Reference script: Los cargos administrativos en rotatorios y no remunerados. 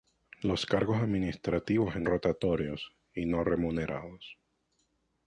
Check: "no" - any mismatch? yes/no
no